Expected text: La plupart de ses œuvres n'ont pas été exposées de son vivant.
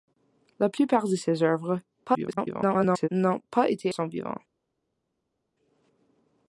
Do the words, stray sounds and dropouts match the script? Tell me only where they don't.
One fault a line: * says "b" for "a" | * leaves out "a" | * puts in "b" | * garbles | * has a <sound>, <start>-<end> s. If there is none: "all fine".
* garbles
* leaves out "exposées de"